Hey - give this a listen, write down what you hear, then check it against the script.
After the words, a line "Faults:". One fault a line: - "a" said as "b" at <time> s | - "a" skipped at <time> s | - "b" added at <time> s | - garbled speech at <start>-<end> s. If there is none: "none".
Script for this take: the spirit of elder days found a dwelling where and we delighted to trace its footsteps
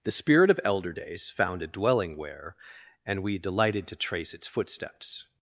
the spirit of elder days found a dwelling where and we delighted to trace its footsteps
Faults:
none